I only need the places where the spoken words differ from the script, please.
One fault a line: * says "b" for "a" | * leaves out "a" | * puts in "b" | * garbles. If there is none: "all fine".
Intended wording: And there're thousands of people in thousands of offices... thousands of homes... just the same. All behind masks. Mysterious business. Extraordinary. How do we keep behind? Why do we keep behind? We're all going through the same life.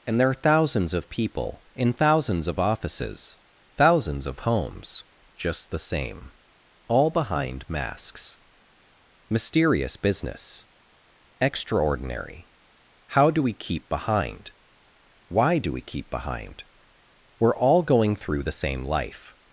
all fine